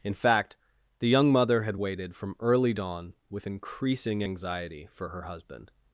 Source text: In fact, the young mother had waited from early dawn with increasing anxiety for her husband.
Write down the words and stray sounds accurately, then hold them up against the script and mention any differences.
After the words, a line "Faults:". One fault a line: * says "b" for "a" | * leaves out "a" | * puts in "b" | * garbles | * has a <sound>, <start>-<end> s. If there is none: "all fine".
In fact, the young mother had waited from early dawn with increasing anxiety for her husband.
Faults:
all fine